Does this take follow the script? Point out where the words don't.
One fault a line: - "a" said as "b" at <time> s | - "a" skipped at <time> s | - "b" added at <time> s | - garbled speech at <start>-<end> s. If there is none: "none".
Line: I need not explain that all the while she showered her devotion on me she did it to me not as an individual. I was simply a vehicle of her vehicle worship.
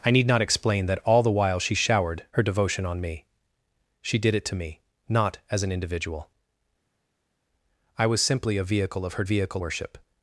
none